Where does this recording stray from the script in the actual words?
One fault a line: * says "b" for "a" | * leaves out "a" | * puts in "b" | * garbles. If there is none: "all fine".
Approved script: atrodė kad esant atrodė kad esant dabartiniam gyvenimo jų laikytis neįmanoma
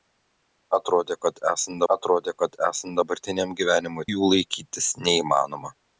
all fine